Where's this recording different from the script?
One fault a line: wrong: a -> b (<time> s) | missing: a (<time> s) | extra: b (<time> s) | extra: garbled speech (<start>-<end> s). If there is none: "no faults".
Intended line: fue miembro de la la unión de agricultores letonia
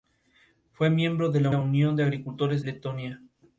no faults